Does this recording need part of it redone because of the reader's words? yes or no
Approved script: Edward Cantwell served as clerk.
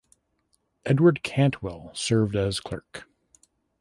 no